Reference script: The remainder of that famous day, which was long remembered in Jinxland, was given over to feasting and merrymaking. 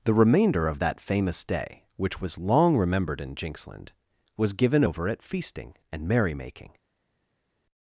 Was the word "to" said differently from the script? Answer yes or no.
yes